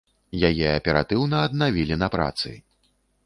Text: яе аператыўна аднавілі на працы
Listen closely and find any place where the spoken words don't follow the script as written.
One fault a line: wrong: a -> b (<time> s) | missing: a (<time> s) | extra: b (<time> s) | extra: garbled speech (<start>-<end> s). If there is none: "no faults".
no faults